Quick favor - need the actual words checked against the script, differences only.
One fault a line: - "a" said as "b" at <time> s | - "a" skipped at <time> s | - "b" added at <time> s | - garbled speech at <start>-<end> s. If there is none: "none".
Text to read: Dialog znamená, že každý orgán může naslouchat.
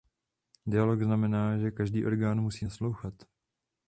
- "může" said as "musí" at 2.4 s